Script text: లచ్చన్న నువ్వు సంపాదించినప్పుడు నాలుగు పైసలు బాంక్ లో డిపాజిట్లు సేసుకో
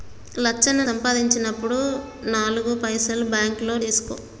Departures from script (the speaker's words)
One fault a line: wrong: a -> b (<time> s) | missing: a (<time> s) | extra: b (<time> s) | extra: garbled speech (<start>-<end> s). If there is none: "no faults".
missing: నువ్వు (0.8 s)
missing: డిపాజిట్లు (3.8 s)